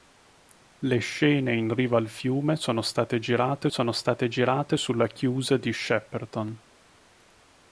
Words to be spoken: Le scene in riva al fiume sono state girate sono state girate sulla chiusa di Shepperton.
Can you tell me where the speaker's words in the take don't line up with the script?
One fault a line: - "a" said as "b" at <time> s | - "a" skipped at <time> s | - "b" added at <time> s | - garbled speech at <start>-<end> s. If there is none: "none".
none